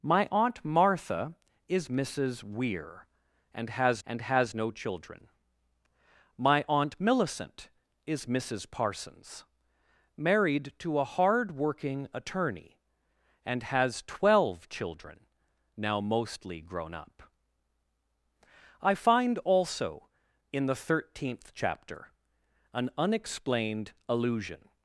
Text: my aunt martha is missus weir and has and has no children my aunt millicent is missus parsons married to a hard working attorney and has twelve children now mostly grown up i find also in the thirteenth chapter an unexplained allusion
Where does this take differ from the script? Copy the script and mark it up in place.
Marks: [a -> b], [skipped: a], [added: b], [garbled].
my aunt martha is missus weir and has and has no children my aunt millicent is missus parsons married to a hard working attorney and has twelve children now mostly grown up i find also in the thirteenth chapter an unexplained allusion